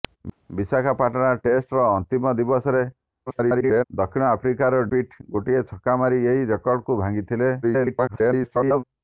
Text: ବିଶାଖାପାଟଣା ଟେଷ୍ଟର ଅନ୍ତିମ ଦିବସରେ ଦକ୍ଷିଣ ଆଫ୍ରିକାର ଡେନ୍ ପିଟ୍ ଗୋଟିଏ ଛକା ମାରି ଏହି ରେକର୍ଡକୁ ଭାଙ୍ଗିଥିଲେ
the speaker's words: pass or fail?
fail